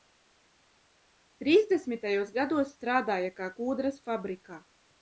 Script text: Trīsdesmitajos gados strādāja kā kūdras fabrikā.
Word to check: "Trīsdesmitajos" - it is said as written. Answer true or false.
true